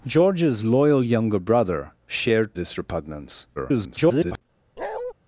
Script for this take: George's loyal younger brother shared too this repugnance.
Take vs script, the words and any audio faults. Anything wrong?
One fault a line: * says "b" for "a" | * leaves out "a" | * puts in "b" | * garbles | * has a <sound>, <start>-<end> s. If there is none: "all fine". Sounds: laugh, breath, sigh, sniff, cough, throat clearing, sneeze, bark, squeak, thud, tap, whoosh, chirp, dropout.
* leaves out "too"
* garbles
* has a bark, 4.8-5.1 s